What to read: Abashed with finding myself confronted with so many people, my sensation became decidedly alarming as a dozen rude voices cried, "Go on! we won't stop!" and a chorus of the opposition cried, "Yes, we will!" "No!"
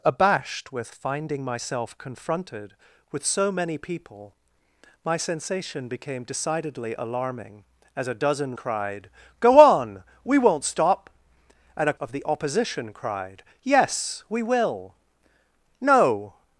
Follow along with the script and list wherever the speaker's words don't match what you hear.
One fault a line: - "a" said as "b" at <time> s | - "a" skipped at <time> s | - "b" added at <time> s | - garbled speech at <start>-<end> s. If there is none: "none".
- "rude voices" skipped at 8.6 s
- "chorus" skipped at 11.9 s